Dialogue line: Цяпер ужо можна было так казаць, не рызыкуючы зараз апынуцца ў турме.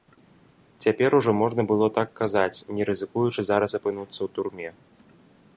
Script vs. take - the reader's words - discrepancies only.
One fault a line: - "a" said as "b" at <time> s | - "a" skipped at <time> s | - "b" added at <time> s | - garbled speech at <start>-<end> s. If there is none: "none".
none